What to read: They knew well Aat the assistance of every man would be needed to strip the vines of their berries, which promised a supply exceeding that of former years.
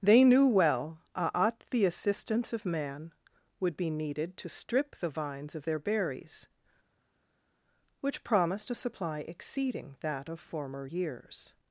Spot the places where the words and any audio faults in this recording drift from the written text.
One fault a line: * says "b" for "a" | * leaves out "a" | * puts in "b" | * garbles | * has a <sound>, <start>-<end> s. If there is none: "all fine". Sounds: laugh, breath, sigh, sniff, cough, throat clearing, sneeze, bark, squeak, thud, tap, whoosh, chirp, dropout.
* leaves out "every"